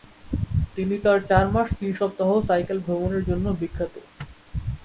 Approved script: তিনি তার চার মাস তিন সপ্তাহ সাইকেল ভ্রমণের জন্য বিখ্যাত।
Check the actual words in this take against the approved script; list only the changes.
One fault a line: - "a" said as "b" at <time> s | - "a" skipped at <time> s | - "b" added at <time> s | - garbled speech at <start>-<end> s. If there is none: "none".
none